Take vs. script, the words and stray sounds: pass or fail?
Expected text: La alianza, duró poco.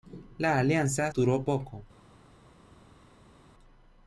pass